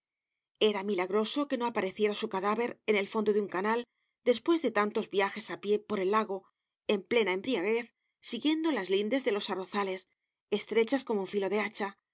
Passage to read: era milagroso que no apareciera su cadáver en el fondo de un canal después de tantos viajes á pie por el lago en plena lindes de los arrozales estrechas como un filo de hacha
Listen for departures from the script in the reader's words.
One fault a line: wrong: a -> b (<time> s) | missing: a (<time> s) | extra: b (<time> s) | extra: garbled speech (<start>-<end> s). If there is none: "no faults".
extra: embriaguez siguiendo las (7.4 s)